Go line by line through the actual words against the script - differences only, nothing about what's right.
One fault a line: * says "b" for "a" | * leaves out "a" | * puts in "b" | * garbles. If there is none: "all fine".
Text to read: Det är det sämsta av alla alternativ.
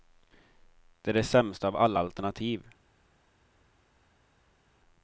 all fine